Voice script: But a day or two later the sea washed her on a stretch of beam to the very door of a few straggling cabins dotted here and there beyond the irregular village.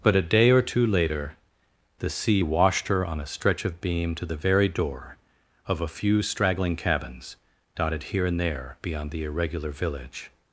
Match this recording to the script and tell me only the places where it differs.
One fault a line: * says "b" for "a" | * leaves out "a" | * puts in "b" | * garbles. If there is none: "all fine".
all fine